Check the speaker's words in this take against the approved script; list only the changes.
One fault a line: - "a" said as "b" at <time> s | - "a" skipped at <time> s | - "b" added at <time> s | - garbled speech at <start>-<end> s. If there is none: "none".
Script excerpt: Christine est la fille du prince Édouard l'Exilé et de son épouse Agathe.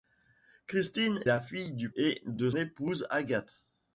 - "est" skipped at 1.2 s
- "prince Édouard l'Exilé" skipped at 1.9 s
- "son" skipped at 2.5 s